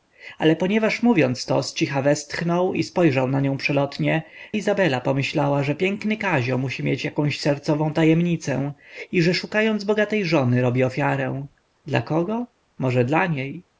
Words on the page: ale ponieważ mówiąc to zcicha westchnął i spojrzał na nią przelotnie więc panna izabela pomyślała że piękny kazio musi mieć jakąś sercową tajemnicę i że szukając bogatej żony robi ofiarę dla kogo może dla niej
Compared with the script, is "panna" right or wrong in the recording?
wrong